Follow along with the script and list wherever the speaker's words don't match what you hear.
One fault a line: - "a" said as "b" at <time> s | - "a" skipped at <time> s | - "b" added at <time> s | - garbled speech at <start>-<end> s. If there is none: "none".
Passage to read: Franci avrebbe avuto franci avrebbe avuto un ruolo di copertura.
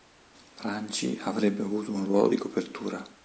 - "franci avrebbe avuto" skipped at 1.9 s